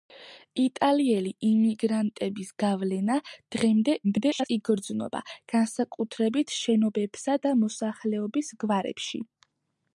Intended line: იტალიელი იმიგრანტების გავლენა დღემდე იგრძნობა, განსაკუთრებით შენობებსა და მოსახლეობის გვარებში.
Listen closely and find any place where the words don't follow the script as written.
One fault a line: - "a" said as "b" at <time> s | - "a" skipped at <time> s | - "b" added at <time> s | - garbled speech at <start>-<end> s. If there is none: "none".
- garbled speech at 4.0-4.5 s